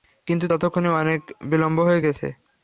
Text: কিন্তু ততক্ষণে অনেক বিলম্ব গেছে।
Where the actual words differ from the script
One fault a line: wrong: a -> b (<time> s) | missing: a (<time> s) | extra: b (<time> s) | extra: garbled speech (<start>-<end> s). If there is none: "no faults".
extra: হয়ে (1.9 s)